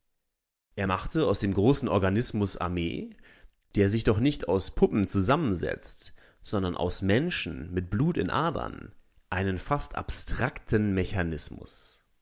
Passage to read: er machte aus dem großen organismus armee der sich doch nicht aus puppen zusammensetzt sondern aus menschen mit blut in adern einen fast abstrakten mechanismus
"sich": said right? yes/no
yes